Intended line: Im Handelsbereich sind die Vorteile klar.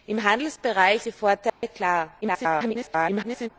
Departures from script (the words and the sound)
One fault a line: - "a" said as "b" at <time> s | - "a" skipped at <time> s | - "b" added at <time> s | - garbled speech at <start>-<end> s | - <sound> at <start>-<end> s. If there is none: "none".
- "sind" skipped at 1.0 s
- dropout at 1.5-1.6 s
- garbled speech at 2.2-3.5 s